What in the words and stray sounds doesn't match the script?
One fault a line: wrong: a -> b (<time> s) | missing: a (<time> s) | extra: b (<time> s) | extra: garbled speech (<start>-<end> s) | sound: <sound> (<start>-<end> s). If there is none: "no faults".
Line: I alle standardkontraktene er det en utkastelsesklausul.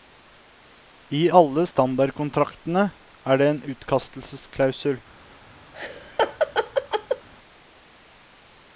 sound: laugh (5.7-7.3 s)